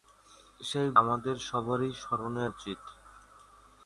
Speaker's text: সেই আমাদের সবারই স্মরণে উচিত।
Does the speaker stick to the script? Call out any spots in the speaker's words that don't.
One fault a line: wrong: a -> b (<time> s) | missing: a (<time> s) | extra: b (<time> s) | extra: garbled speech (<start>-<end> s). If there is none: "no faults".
no faults